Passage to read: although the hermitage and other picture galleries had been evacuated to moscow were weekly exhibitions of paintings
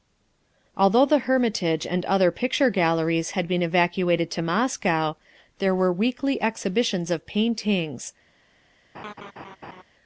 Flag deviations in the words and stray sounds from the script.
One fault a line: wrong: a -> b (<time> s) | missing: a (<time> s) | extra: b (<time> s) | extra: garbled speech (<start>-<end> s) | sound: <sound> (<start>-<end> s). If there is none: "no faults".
extra: there (5.6 s)
sound: laugh (8.9-9.8 s)